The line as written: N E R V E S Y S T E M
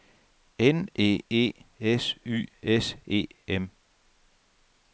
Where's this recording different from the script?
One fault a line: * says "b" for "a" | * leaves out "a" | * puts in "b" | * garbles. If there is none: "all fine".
* leaves out "R V"
* leaves out "T"